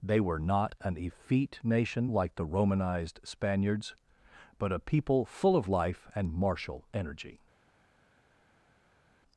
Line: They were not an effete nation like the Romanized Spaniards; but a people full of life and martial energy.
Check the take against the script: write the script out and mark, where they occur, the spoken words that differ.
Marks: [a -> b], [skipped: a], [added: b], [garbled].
They were not an effete nation like the Romanized Spaniards; but a people full of life and martial energy.